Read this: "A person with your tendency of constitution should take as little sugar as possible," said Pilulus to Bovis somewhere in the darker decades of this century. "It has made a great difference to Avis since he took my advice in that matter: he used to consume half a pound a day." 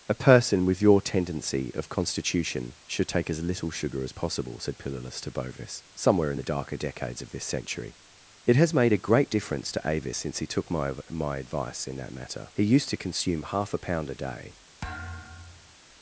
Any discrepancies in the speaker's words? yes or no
yes